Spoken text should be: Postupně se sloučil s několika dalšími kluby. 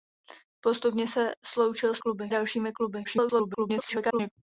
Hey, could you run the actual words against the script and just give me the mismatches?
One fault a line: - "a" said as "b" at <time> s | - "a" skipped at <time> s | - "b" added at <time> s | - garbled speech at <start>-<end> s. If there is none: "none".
- "několika" said as "kluby" at 2.0 s
- garbled speech at 3.0-4.3 s